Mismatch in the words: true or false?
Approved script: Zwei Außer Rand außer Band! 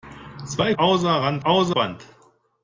false